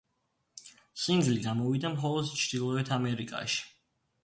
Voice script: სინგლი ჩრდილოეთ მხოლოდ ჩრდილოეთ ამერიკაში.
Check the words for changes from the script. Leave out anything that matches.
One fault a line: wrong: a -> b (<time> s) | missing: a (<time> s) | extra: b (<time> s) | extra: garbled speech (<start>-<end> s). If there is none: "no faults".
wrong: ჩრდილოეთ -> გამოვიდა (1.5 s)